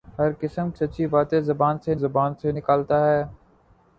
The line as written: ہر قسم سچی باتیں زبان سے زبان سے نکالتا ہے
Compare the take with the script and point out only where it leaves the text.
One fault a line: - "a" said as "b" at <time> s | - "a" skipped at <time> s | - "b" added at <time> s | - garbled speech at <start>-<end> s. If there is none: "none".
none